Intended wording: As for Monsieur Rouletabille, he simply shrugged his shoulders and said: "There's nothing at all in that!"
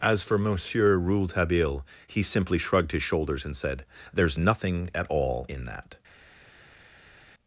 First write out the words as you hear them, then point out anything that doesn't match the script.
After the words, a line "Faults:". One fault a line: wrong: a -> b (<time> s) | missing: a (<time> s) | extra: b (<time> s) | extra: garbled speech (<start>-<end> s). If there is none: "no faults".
As for Monsieur Rouletabille, he simply shrugged his shoulders and said: "There's nothing at all in that!"
Faults:
no faults